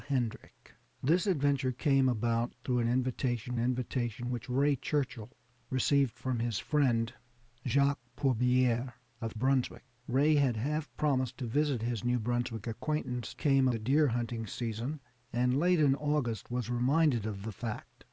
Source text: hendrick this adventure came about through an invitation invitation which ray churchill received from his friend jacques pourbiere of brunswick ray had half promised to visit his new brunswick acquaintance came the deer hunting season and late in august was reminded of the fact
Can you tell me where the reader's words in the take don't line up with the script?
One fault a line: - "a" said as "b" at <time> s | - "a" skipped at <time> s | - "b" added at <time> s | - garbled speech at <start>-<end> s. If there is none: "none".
none